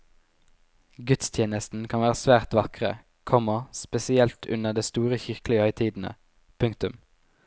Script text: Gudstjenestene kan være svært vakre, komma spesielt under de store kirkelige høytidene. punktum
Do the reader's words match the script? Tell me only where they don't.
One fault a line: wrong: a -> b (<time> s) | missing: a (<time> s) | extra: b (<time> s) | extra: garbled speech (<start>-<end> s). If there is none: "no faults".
no faults